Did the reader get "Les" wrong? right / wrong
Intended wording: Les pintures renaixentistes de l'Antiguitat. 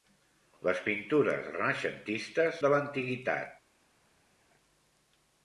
right